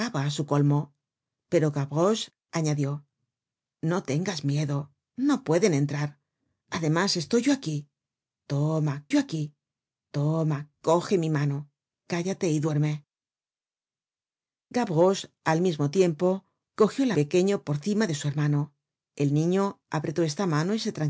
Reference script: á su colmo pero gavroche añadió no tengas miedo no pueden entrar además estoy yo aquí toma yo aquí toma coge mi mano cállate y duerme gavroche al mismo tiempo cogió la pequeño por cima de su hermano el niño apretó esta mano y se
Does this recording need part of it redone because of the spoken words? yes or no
no